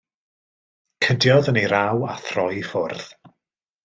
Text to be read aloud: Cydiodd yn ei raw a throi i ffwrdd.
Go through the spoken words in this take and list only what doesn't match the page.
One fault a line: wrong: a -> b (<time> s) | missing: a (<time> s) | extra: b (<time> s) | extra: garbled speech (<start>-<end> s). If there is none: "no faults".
no faults